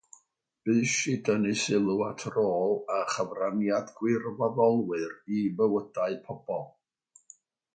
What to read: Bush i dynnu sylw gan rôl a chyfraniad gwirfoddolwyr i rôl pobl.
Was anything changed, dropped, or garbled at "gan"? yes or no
yes